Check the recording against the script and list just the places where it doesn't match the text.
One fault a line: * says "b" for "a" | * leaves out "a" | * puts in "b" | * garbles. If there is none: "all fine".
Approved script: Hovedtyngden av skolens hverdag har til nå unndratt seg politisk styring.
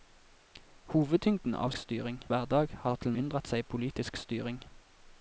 * says "styring" for "skolens"
* leaves out "nå"